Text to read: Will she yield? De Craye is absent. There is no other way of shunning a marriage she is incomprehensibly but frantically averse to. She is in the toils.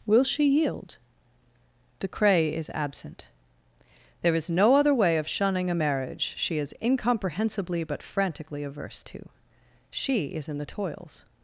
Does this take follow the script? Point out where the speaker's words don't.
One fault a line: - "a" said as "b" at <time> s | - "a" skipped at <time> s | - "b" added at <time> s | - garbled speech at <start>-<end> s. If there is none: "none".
none